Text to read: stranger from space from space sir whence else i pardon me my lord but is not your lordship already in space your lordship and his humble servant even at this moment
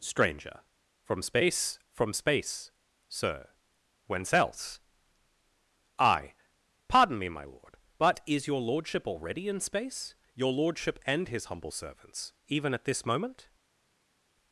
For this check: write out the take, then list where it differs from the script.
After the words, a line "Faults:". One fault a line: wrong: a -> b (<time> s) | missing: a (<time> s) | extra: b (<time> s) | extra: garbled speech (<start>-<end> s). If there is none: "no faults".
stranger from space from space sir whence else i pardon me my lord but is your lordship already in space your lordship and his humble servants even at this moment
Faults:
missing: not (8.5 s)
wrong: servant -> servants (11.7 s)